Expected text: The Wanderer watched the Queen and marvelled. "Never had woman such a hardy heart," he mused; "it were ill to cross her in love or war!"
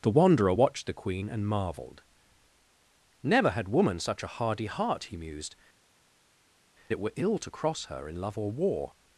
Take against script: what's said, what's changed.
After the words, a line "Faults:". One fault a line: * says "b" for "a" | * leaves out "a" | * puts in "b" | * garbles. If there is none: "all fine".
The Wanderer watched the Queen and marvelled. "Never had woman such a hardy heart," he mused; "it were ill to cross her in love or war!"
Faults:
all fine